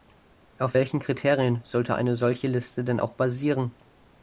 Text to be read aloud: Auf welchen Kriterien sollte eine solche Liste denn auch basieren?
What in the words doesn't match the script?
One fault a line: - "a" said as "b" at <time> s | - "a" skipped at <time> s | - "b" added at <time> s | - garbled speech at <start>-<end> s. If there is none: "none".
none